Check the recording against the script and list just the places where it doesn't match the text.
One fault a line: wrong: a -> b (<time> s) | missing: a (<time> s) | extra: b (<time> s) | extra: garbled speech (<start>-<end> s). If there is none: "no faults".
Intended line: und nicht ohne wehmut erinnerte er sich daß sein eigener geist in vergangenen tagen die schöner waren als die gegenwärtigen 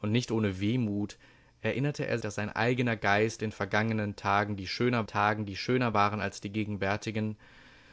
missing: sich (2.2 s)
extra: tagen die schöner (5.1 s)